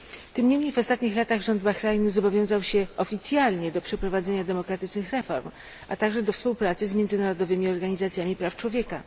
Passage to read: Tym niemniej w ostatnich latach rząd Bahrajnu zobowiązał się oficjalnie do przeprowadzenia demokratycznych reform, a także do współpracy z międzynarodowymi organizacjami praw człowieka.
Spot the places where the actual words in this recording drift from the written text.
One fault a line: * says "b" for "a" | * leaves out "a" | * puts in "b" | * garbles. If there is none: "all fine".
all fine